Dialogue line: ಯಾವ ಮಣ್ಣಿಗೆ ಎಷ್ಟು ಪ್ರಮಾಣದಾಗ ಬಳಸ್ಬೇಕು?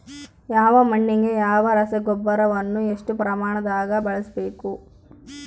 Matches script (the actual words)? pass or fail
fail